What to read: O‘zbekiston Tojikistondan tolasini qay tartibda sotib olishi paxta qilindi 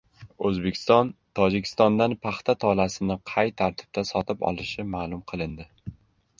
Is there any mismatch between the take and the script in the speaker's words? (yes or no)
yes